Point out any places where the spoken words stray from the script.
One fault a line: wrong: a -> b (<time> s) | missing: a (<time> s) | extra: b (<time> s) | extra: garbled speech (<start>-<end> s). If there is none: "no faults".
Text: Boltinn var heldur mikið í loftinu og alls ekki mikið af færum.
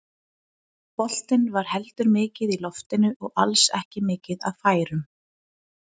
no faults